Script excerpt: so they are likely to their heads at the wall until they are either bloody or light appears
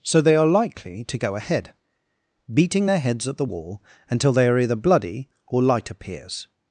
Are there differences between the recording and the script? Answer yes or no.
yes